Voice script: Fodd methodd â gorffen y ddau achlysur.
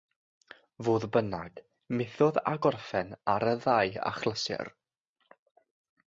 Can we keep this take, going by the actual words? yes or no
no